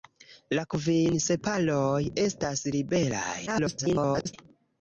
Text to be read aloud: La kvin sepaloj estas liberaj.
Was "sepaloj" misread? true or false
false